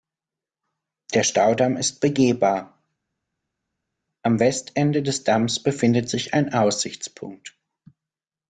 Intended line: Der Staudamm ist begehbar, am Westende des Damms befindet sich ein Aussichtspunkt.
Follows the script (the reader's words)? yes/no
yes